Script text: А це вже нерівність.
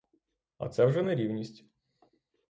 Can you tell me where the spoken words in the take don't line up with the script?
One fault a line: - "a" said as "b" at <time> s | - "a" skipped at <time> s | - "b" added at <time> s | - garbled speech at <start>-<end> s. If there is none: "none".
none